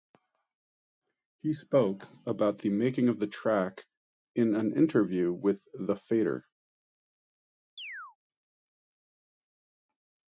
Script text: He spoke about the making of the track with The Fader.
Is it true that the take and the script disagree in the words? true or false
true